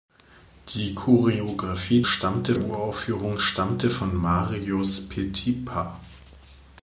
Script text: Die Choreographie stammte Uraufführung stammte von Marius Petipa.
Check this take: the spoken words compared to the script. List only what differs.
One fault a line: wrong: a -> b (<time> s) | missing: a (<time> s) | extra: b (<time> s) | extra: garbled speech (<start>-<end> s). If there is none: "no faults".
no faults